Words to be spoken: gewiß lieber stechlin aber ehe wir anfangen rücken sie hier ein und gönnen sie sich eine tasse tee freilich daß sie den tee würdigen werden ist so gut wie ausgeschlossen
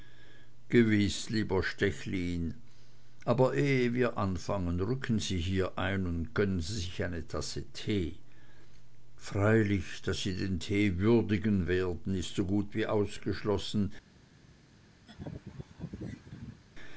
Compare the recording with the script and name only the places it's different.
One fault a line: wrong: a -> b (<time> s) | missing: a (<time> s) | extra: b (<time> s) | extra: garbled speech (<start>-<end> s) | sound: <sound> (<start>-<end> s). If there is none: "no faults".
sound: laugh (15.1-16.6 s)